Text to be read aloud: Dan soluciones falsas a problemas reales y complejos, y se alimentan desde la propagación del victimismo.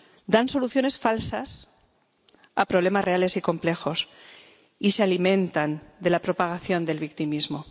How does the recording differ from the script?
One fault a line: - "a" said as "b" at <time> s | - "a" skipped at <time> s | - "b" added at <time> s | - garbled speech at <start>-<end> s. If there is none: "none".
- "desde" said as "de" at 6.0 s